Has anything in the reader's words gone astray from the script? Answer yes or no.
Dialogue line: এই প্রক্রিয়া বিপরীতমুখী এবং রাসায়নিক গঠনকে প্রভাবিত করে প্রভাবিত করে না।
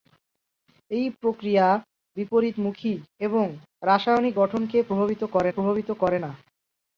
no